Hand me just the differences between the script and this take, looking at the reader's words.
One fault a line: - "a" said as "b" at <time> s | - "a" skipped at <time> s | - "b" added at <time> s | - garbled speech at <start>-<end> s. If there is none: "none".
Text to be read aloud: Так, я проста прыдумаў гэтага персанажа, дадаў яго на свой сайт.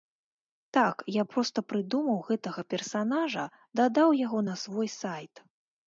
none